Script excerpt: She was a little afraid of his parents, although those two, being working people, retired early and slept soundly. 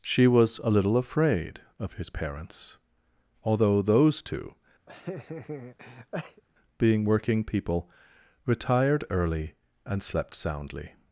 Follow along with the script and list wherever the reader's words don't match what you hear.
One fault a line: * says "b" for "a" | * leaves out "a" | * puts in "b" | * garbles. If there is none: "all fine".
all fine